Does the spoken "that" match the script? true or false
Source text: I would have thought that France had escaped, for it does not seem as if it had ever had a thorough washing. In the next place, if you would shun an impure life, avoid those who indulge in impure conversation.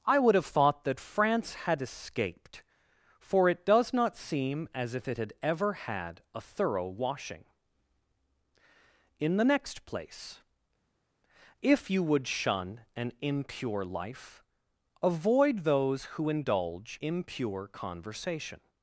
true